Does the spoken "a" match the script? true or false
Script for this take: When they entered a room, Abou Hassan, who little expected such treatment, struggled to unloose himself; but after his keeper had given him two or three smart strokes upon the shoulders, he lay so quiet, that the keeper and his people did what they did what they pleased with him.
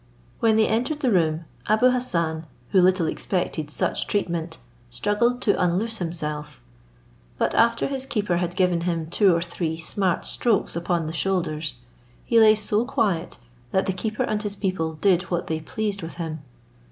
false